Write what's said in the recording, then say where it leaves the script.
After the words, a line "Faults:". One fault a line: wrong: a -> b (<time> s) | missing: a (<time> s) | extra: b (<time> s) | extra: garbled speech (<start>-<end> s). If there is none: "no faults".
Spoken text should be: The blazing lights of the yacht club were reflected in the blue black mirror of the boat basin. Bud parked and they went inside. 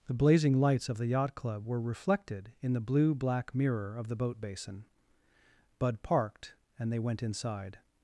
The blazing lights of the yacht club were reflected in the blue black mirror of the boat basin. Bud parked and they went inside.
Faults:
no faults